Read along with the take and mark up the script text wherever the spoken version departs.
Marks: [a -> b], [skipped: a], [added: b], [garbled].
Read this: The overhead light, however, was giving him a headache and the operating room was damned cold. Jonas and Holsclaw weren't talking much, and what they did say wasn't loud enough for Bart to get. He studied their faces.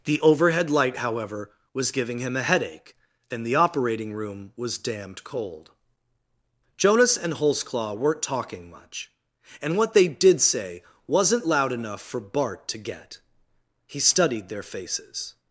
The overhead light, however, was giving him a headache and the operating room was damned cold. Jonas and Holsclaw weren't talking much, and what they did say wasn't loud enough for Bart to get. He studied their faces.